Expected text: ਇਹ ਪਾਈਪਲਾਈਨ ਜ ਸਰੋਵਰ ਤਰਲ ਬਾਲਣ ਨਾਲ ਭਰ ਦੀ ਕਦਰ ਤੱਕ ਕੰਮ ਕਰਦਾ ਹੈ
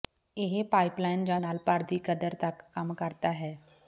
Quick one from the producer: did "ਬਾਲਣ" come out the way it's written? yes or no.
no